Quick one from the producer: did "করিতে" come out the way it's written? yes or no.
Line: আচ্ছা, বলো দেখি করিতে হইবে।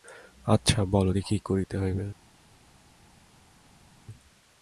yes